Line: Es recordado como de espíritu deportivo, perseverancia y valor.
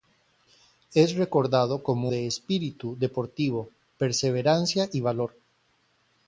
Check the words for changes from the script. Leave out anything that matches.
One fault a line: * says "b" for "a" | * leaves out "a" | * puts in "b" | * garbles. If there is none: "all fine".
all fine